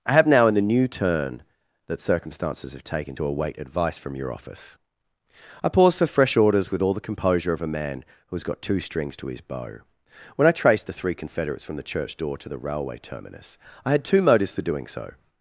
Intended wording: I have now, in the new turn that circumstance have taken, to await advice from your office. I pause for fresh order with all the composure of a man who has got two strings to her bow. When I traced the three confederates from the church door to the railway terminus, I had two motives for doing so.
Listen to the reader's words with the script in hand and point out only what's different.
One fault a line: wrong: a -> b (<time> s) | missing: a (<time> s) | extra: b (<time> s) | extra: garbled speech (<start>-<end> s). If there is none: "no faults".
wrong: circumstance -> circumstances (2.0 s)
wrong: order -> orders (6.4 s)
wrong: her -> his (9.3 s)